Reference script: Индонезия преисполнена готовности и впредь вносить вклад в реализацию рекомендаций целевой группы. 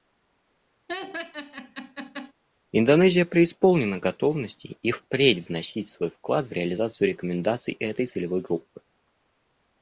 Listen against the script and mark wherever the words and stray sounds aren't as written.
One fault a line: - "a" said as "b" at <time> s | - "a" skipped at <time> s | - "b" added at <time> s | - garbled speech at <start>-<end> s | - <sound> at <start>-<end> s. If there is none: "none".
- laugh at 0.9-2.3 s
- "свой" added at 5.9 s
- "этой" added at 7.8 s